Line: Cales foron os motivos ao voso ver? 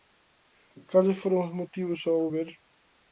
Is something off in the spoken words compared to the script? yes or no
yes